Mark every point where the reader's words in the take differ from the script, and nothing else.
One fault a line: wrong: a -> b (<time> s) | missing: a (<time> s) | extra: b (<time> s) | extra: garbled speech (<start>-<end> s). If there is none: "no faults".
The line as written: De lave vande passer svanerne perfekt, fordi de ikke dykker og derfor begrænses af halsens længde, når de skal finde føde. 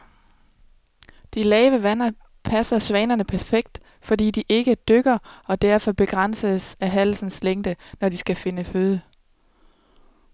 no faults